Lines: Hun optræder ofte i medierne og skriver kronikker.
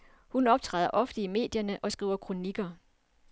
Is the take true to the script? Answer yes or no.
yes